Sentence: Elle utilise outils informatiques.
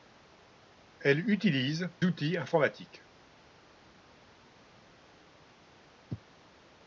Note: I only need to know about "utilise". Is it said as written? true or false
true